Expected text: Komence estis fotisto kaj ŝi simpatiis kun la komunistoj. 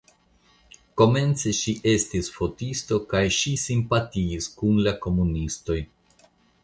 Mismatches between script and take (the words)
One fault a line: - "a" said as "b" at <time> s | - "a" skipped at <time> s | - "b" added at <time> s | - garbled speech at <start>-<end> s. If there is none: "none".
- "ŝi" added at 1.5 s